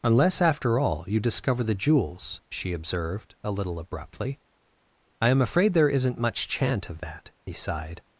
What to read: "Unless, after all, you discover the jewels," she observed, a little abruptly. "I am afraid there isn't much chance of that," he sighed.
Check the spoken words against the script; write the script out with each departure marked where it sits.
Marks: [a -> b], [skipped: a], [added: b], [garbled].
"Unless, after all, you discover the jewels," she observed, a little abruptly. "I am afraid there isn't much [chance -> chant] of that," he sighed.